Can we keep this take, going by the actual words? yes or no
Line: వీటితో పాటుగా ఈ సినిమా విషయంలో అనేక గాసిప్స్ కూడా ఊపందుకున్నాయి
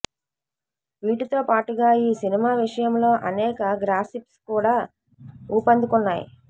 yes